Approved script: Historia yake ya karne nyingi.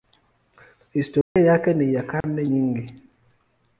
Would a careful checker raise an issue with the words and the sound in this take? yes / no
yes